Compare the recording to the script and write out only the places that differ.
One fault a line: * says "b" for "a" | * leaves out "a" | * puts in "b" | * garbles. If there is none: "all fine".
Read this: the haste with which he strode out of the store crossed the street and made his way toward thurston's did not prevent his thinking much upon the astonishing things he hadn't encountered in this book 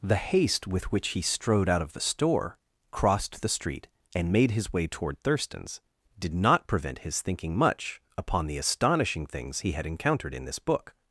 * says "had" for "hadn't"